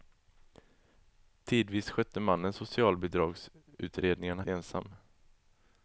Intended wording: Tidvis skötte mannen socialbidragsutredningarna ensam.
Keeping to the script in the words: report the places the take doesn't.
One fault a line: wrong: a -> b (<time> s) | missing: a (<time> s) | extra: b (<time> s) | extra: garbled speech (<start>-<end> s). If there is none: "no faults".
no faults